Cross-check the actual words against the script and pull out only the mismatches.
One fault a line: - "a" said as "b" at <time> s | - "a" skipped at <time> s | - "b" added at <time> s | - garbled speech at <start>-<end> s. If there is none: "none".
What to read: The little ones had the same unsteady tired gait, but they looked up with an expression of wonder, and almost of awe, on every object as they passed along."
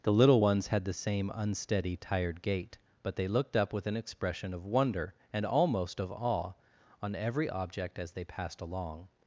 none